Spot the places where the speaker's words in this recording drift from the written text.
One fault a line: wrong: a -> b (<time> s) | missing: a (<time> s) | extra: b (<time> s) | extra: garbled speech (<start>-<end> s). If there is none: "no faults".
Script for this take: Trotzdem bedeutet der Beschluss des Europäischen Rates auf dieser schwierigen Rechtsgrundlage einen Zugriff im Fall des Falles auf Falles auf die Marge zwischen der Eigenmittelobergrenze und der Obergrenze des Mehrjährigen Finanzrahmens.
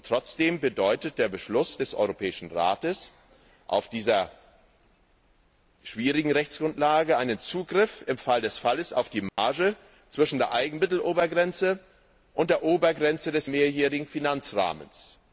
missing: Falles auf (9.1 s)